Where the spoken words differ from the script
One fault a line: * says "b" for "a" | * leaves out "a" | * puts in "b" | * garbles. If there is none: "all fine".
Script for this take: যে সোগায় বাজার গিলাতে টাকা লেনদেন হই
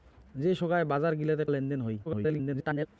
* leaves out "টাকা"
* garbles